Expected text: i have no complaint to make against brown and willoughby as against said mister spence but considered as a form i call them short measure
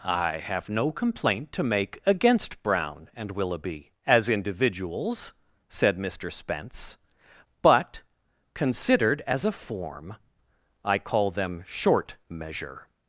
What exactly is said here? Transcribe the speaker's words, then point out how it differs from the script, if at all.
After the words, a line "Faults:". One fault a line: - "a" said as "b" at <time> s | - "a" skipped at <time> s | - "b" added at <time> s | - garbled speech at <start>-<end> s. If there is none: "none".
i have no complaint to make against brown and willoughby as individuals said mister spence but considered as a form i call them short measure
Faults:
- "against" said as "individuals" at 4.3 s